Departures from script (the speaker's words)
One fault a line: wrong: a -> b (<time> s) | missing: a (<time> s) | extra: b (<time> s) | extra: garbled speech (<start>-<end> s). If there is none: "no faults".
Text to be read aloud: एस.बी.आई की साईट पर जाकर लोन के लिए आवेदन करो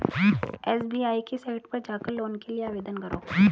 no faults